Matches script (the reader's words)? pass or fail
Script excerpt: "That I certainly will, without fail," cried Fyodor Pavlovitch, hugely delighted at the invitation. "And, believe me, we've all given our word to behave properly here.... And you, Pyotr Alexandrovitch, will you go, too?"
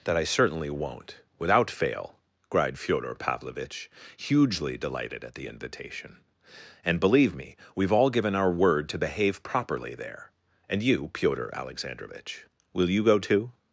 fail